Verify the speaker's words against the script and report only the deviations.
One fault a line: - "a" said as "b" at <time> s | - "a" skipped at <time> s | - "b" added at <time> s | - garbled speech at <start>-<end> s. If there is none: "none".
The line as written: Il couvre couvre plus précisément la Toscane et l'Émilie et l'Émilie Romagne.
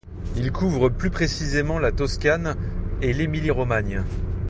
- "couvre" skipped at 0.9 s
- "et l'Émilie" skipped at 3.5 s